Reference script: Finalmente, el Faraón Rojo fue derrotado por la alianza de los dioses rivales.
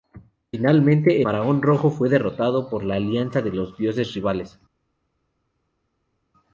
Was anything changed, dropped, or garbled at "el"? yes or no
yes